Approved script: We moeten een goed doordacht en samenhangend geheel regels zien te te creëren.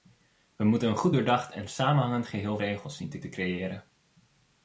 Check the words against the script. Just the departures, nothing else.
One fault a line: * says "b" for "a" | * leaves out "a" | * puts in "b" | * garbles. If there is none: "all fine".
all fine